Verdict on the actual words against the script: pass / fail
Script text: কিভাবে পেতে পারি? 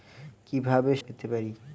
pass